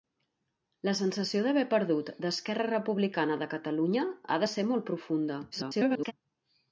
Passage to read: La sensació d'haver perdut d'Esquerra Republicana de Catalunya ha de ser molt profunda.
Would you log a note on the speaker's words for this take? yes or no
yes